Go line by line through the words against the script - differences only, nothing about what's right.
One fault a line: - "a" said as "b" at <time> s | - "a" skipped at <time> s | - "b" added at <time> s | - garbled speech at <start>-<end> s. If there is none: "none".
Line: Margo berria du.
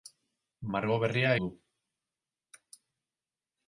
none